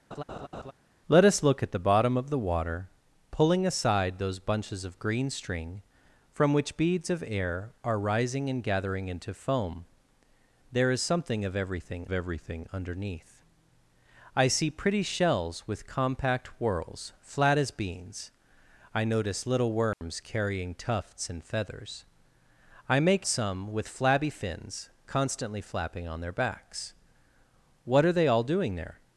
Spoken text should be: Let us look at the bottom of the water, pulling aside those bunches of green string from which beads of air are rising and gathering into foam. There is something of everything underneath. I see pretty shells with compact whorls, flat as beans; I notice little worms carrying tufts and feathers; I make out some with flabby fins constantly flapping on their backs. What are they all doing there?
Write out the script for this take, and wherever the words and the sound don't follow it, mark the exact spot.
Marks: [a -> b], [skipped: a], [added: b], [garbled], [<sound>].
[laugh] Let us look at the bottom of the water, pulling aside those bunches of green string from which beads of air are rising and gathering into foam. There is something of everything [added: everything] underneath. I see pretty shells with compact whorls, flat as beans; I notice little worms [dropout] carrying tufts and feathers; I make [skipped: out] some with flabby fins constantly flapping on their backs. What are they all doing there?